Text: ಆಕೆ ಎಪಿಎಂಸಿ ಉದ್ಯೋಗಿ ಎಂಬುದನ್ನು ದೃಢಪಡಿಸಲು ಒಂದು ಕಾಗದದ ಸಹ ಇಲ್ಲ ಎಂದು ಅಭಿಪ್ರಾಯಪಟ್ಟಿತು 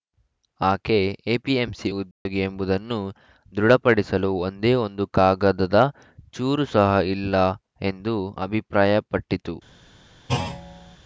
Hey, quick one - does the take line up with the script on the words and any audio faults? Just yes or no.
no